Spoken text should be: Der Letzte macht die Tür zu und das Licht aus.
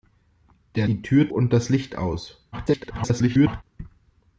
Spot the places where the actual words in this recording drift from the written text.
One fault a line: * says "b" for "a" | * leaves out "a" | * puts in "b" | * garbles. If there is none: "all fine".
* leaves out "Letzte macht"
* leaves out "zu"
* garbles